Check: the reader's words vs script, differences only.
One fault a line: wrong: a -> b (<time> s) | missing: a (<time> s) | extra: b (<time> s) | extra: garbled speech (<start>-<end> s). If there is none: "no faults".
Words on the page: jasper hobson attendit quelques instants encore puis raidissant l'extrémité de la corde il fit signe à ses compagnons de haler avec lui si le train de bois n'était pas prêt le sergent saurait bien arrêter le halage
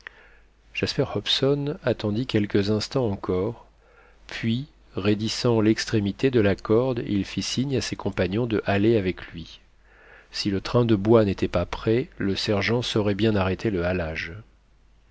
no faults